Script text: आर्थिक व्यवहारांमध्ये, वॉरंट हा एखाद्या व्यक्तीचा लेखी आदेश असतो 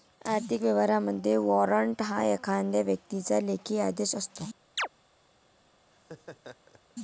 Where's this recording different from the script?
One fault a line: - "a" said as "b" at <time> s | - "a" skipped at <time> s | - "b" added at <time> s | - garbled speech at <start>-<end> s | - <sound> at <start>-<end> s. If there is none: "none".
- chirp at 4.8-4.9 s
- laugh at 5.9-6.9 s